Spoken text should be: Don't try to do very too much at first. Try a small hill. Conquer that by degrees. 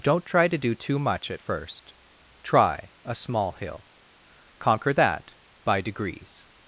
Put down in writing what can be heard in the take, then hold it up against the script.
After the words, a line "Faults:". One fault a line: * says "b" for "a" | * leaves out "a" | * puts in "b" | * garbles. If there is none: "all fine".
Don't try to do too much at first. Try a small hill. Conquer that by degrees.
Faults:
* leaves out "very"